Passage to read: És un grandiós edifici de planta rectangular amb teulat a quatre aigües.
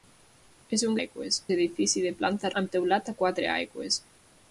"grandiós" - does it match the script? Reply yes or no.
no